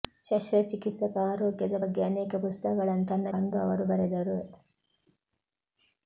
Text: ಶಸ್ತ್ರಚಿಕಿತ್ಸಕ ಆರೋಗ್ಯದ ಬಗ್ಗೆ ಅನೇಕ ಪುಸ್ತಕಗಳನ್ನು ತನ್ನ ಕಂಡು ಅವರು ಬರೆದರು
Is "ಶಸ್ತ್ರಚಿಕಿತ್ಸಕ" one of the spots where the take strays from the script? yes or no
no